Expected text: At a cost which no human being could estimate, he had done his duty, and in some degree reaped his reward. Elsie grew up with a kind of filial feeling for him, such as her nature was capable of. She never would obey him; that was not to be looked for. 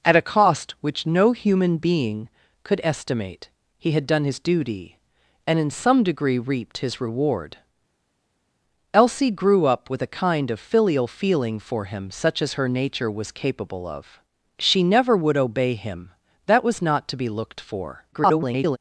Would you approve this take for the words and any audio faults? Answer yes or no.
no